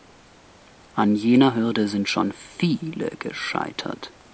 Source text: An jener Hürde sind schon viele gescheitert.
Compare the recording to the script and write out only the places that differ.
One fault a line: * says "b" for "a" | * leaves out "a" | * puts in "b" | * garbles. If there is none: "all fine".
all fine